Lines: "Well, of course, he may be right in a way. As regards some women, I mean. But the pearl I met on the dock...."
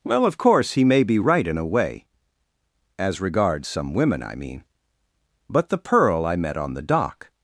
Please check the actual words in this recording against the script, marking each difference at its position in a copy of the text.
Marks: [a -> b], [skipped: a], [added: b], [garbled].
"Well, of course, he may be right in a way. As regards some women, I mean. But the pearl I met on the dock...."